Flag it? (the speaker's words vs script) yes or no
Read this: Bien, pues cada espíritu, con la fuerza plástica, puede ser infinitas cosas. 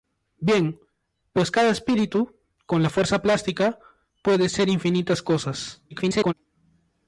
yes